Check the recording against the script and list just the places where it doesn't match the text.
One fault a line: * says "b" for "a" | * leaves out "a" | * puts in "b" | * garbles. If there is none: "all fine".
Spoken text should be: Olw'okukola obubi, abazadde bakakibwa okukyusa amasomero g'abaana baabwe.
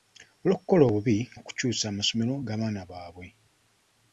* leaves out "abazadde bakakibwa"